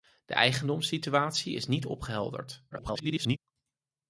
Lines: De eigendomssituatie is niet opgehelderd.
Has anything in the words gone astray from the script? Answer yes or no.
yes